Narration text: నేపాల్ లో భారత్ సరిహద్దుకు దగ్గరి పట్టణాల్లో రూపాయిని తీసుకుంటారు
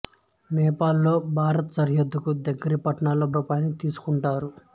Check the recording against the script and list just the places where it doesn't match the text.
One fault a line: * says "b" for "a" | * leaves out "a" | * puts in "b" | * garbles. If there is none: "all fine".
all fine